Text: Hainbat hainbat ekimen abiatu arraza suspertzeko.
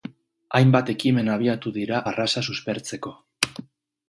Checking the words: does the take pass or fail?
fail